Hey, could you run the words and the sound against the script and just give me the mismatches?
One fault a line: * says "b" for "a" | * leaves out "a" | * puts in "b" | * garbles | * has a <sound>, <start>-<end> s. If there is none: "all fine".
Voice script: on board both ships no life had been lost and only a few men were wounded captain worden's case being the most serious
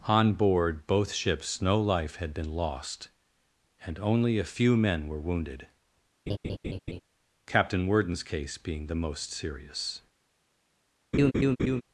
* has a laugh, 6.3-7.0 s
* has a laugh, 11.1-11.8 s